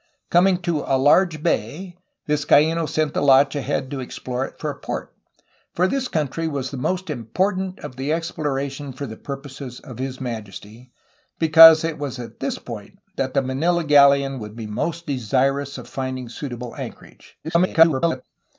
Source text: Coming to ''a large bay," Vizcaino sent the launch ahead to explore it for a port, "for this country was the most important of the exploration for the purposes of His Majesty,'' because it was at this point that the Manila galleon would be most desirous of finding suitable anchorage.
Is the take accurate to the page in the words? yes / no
no